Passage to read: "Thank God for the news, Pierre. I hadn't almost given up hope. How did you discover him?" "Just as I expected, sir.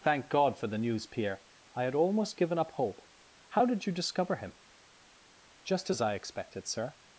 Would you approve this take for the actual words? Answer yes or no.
no